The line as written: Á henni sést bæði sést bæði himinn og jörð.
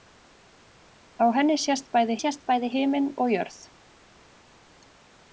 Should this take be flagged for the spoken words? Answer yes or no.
no